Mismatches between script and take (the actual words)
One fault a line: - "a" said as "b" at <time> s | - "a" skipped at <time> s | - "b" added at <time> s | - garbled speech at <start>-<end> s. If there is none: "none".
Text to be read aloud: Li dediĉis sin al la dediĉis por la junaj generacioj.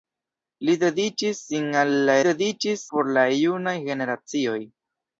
none